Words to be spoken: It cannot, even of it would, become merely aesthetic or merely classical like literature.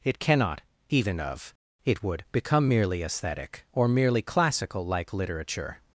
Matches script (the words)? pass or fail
pass